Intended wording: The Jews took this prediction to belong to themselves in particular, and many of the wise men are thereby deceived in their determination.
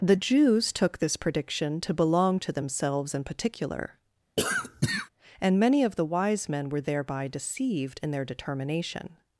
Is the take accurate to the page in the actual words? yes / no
no